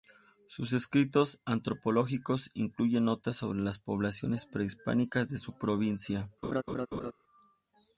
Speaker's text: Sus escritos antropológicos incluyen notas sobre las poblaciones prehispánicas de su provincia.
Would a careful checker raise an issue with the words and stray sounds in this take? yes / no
yes